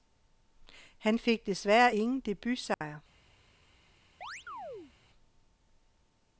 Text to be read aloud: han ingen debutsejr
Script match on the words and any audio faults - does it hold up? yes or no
no